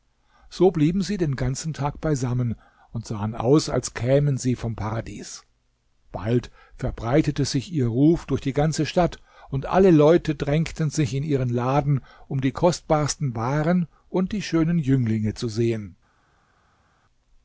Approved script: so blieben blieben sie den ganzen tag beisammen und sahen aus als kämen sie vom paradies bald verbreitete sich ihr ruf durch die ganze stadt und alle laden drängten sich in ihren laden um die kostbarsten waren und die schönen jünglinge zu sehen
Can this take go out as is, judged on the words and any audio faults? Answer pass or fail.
fail